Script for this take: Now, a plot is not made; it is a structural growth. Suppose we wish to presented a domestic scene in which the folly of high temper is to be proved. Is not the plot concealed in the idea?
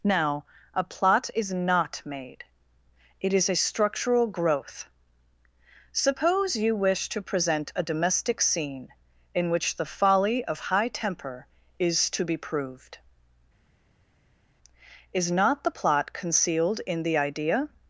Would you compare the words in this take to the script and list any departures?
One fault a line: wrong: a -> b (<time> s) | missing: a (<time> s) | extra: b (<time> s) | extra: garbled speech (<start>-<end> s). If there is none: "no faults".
wrong: we -> you (6.5 s)
wrong: presented -> present (7.2 s)